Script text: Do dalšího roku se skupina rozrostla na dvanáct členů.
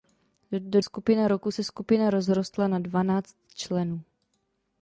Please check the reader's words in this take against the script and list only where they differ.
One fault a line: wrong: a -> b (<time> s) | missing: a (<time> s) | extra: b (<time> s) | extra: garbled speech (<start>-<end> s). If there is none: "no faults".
wrong: dalšího -> skupina (0.8 s)